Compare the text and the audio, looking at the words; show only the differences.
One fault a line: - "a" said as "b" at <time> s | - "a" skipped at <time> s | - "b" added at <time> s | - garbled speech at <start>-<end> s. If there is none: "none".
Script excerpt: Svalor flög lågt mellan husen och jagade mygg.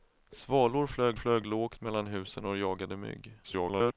- "flög" added at 1.1 s
- garbled speech at 3.4-3.9 s